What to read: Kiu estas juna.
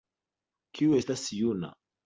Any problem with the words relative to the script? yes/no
no